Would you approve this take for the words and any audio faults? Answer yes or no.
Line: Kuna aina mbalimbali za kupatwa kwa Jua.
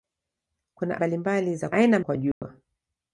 no